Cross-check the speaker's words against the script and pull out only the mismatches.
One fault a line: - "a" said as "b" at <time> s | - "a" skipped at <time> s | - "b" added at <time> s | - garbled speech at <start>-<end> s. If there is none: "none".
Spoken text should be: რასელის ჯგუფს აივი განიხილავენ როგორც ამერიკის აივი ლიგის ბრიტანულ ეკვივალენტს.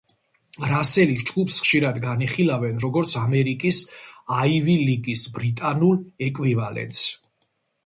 - "აივი" said as "ხშირად" at 1.6 s